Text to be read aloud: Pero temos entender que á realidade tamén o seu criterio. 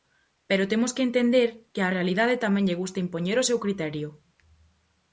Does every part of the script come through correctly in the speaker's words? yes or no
no